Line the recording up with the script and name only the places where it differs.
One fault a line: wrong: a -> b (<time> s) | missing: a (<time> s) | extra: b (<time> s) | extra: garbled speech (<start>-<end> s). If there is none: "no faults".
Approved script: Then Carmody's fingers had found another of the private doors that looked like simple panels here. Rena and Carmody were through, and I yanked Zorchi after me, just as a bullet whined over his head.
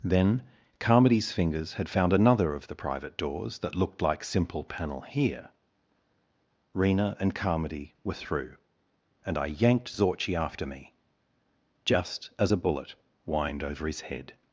wrong: panels -> panel (4.6 s)